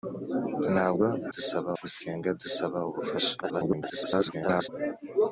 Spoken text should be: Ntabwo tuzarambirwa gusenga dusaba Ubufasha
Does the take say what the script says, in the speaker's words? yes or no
no